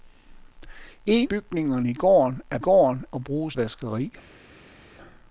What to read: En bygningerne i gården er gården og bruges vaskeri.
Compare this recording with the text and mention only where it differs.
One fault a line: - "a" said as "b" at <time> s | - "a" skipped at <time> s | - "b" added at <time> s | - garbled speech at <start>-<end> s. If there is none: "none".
none